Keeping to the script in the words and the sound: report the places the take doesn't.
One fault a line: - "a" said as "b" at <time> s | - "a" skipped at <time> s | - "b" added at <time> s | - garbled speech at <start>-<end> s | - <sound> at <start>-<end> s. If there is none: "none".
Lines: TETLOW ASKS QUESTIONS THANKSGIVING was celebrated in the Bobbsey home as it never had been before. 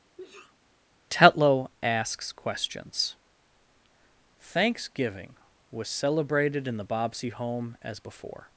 - sneeze at 0.2-0.6 s
- "it never had been" skipped at 8.0 s